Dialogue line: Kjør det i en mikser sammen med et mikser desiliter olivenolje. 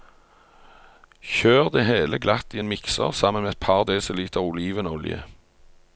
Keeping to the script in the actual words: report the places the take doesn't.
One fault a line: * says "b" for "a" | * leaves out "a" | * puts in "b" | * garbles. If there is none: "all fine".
* puts in "hele glatt"
* says "par" for "mikser"